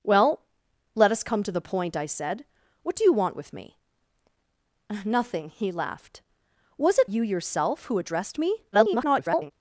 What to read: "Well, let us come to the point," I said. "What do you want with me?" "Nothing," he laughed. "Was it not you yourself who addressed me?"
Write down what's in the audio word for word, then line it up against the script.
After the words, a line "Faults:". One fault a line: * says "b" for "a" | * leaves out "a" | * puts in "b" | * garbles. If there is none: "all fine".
"Well, let us come to the point," I said. "What do you want with me?" "Nothing," he laughed. "Was it you yourself who addressed me?" [garbled]
Faults:
* leaves out "not"
* garbles